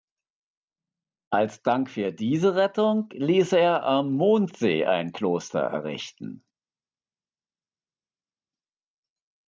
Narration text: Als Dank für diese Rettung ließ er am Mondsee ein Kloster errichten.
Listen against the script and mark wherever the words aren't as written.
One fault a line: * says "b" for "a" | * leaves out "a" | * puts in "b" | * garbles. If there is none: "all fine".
all fine